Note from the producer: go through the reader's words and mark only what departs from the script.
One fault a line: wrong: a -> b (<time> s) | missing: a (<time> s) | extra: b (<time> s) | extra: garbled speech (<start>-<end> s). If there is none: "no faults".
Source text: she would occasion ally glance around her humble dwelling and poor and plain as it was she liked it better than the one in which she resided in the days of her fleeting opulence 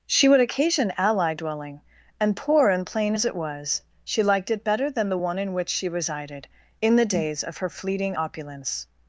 missing: glance around her humble (1.4 s)